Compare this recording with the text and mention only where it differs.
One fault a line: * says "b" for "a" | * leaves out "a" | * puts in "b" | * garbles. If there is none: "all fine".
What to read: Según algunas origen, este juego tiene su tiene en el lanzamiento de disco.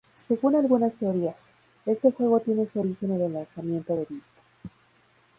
* says "teorías" for "origen"
* says "origen" for "tiene"